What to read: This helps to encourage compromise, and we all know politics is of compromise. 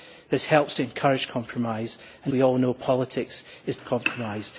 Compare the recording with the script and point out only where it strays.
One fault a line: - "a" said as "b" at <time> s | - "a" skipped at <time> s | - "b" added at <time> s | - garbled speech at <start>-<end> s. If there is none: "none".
none